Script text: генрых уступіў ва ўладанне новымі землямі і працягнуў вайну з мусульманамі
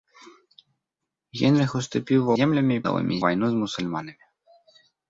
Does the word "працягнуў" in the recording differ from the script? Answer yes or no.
yes